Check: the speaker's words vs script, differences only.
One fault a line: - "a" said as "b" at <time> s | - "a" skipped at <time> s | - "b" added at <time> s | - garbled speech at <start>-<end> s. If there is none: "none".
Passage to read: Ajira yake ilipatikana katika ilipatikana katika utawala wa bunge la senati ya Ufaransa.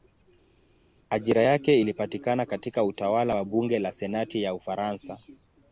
- "ilipatikana katika" skipped at 2.8 s